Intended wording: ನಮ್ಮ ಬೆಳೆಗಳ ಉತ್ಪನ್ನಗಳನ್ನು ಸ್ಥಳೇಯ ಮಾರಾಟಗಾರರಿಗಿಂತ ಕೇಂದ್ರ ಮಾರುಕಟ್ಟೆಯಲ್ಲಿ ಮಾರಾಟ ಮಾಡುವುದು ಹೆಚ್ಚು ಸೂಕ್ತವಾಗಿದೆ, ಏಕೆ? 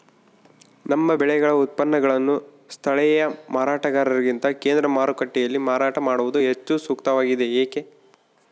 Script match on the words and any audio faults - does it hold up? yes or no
yes